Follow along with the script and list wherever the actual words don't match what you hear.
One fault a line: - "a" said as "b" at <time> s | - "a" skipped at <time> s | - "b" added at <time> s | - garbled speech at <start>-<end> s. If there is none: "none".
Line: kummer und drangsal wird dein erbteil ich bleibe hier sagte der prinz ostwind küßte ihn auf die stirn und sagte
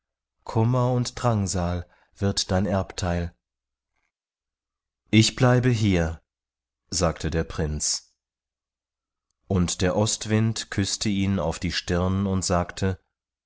- "und der" added at 9.5 s